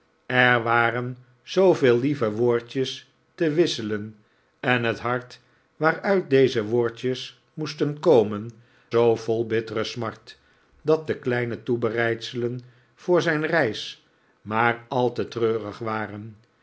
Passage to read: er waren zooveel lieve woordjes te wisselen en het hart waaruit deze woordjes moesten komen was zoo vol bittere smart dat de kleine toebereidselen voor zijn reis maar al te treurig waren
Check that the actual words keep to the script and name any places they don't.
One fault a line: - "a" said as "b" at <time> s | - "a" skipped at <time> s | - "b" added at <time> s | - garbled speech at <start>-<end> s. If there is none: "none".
- "was" skipped at 8.5 s